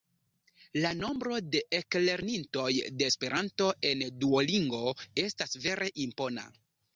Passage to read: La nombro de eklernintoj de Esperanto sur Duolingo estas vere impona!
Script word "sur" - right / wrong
wrong